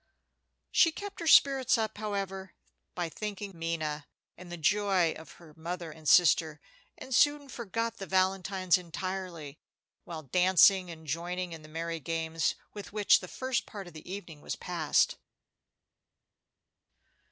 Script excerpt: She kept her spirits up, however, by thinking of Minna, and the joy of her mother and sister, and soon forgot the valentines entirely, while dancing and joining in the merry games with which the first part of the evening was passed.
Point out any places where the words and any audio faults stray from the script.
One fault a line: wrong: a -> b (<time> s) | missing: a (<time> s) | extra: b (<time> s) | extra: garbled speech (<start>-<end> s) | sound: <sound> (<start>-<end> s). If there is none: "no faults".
missing: of (3.5 s)